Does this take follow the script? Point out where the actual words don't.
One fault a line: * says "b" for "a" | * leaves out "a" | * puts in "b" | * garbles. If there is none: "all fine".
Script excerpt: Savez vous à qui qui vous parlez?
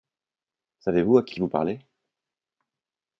all fine